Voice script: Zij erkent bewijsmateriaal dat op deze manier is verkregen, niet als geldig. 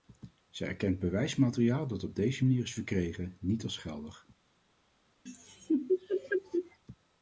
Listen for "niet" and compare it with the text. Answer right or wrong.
right